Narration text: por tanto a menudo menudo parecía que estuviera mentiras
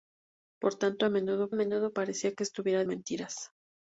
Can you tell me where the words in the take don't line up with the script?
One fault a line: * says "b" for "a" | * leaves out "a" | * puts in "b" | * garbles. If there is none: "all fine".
all fine